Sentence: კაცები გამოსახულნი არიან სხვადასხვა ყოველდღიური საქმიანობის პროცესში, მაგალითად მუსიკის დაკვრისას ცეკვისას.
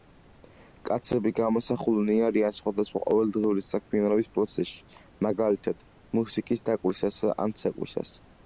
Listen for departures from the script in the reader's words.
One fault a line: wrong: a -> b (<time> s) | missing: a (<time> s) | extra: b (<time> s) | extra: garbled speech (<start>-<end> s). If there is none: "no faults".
extra: ან (7.5 s)